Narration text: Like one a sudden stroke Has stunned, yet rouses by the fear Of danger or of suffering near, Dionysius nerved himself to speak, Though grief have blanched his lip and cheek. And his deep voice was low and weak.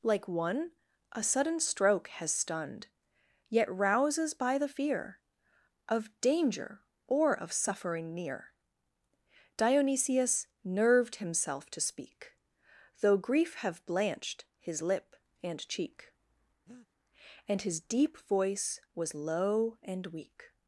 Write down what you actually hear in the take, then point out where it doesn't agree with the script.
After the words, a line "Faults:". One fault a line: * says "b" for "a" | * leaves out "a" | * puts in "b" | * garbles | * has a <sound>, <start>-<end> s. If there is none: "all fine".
Like one a sudden stroke Has stunned, yet rouses by the fear Of danger or of suffering near, Dionysius nerved himself to speak, Though grief have blanched his lip and cheek. And his deep voice was low and weak.
Faults:
* has a breath, 16.7-16.9 s